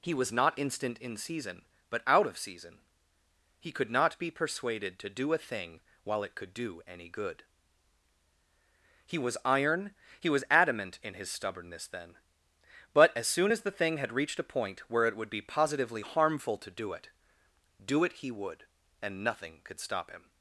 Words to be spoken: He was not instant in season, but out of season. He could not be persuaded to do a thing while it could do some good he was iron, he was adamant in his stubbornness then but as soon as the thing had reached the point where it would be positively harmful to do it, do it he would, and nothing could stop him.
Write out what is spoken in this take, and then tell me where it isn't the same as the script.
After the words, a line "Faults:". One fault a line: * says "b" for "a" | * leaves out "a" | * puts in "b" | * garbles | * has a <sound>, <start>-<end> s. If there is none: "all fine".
He was not instant in season, but out of season. He could not be persuaded to do a thing while it could do any good he was iron, he was adamant in his stubbornness then but as soon as the thing had reached a point where it would be positively harmful to do it, do it he would, and nothing could stop him.
Faults:
* says "any" for "some"
* says "a" for "the"